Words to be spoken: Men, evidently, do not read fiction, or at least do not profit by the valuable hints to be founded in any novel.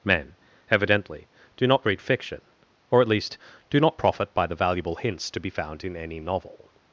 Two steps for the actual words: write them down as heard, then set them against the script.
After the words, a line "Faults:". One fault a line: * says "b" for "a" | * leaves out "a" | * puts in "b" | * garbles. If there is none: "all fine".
Men, evidently, do not read fiction, or at least do not profit by the valuable hints to be found in any novel.
Faults:
* says "found" for "founded"